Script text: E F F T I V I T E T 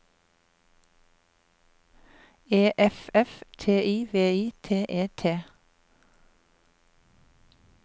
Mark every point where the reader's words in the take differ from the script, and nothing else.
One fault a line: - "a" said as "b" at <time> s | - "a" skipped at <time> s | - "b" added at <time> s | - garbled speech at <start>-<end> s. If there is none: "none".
none